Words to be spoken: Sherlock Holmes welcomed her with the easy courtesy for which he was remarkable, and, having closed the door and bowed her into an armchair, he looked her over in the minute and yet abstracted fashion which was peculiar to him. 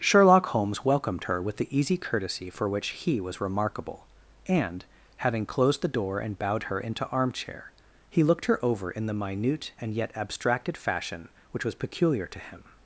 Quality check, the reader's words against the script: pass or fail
fail